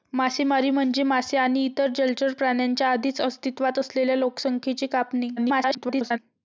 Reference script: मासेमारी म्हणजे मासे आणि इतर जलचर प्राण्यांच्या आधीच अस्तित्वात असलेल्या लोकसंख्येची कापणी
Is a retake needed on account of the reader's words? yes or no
yes